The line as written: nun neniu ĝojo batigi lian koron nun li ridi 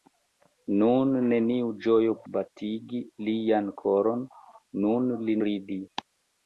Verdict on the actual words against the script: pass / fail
pass